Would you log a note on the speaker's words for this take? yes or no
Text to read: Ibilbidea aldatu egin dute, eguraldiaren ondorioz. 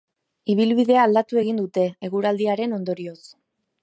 no